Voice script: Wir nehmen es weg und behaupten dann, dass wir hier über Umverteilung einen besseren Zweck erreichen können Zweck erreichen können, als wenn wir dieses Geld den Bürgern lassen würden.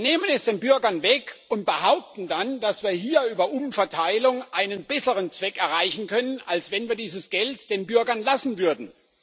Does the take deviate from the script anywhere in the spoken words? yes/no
yes